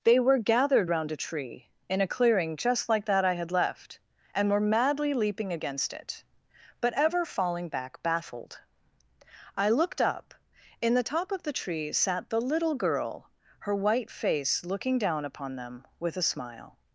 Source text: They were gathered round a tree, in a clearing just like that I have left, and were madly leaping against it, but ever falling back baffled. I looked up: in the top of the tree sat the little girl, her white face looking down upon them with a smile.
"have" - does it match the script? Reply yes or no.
no